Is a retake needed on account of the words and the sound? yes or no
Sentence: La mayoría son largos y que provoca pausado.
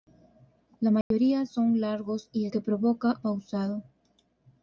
yes